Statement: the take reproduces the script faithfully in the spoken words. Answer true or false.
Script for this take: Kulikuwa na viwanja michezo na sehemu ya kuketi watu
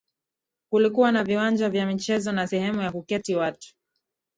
false